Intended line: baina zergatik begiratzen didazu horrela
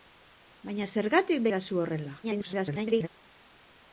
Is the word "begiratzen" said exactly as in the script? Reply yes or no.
no